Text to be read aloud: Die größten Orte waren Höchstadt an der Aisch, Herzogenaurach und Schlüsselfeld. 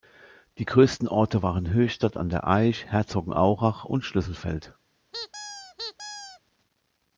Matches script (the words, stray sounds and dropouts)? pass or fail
fail